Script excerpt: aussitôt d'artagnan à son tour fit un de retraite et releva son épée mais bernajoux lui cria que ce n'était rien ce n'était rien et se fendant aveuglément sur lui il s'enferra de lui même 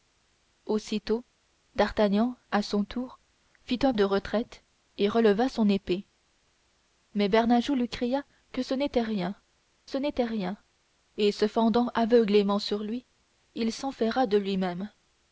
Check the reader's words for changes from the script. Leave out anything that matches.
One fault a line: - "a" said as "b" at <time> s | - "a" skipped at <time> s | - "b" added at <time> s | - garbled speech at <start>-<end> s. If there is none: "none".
none